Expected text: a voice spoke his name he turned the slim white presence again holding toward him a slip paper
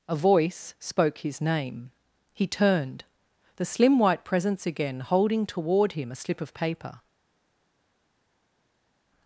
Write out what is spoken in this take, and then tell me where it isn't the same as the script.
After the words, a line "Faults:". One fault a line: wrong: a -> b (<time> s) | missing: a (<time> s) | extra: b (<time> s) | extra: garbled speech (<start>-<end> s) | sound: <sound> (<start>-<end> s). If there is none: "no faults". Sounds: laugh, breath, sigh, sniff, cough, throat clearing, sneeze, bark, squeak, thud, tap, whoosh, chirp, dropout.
a voice spoke his name he turned the slim white presence again holding toward him a slip of paper
Faults:
extra: of (6.4 s)